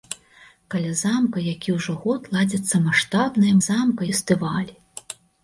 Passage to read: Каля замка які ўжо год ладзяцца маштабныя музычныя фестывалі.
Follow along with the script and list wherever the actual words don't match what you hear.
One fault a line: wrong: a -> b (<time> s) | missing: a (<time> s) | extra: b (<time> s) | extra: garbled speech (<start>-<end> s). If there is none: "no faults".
wrong: музычныя -> замка (3.7 s)